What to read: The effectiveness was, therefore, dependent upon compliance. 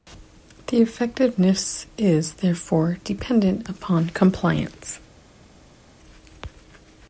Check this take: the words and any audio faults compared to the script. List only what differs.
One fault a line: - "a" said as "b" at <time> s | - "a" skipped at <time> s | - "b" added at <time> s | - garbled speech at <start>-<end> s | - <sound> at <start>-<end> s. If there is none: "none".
- "was" said as "is" at 2.0 s